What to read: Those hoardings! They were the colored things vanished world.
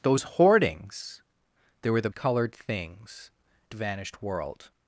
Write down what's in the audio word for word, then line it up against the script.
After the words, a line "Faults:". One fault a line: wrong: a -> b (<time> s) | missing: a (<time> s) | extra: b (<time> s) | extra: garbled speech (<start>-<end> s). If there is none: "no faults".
Those hoardings! They were the colored things vanished world.
Faults:
no faults